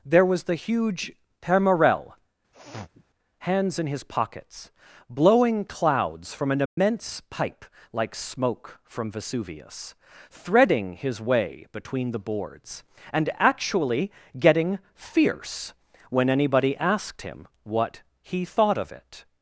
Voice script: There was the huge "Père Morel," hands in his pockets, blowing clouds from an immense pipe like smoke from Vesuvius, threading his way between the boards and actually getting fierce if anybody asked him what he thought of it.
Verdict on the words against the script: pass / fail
fail